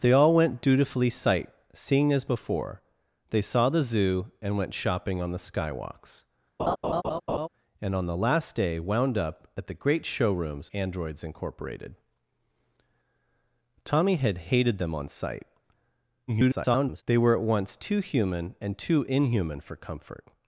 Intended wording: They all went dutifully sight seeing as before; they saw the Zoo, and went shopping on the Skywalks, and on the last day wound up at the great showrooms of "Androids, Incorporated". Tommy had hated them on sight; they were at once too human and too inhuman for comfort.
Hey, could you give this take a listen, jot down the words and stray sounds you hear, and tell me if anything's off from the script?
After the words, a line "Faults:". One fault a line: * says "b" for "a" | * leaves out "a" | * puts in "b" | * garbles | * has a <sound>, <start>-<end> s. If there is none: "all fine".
They all went dutifully sight seeing as before; they saw the Zoo, and went shopping on the Skywalks, and on the last day wound up at the great showrooms "Androids, Incorporated". Tommy had hated them on sight; [garbled] they were at once too human and too inhuman for comfort.
Faults:
* has a laugh, 6.6-7.5 s
* leaves out "of"
* garbles